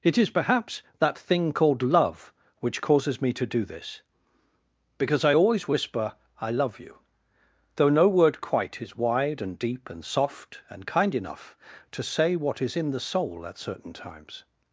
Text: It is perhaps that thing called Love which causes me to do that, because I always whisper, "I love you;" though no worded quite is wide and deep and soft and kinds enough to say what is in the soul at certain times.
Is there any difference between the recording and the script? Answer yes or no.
yes